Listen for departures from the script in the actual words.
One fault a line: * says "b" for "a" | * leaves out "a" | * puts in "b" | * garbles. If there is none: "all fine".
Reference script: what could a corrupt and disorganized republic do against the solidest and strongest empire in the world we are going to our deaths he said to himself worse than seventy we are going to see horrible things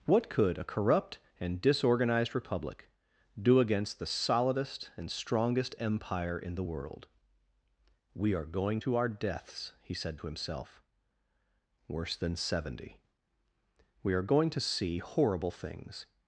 all fine